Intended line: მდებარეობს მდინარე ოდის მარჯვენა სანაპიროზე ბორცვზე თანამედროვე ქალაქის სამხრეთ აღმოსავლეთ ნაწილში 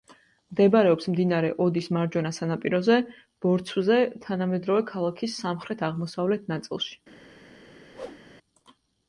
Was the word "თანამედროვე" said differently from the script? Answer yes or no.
no